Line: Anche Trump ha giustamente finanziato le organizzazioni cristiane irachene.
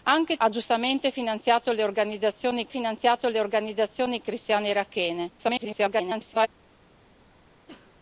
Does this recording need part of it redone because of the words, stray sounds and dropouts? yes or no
yes